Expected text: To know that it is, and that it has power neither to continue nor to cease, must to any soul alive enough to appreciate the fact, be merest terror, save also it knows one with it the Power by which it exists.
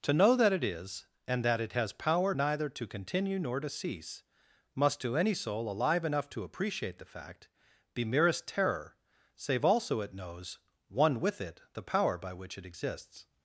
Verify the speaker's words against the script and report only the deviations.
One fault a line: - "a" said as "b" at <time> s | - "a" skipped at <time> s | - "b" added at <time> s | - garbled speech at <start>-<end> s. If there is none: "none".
none